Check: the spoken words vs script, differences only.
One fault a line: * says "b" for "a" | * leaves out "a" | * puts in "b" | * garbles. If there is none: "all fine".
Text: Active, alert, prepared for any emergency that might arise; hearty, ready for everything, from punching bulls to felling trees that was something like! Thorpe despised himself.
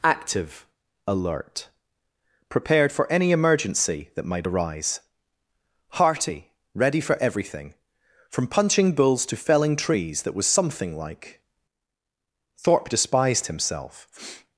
all fine